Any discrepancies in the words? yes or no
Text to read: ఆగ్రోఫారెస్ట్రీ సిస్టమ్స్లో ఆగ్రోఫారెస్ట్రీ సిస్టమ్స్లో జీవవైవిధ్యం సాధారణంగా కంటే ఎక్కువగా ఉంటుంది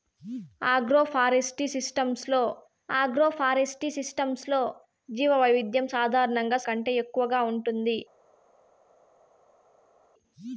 no